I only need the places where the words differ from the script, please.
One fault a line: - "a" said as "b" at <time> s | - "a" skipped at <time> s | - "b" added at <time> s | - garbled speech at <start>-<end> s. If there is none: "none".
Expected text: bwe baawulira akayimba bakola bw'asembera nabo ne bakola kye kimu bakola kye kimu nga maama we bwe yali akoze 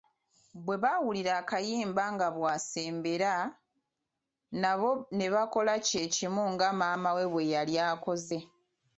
- "bakola" said as "nga" at 2.1 s
- "bakola kye kimu" skipped at 6.4 s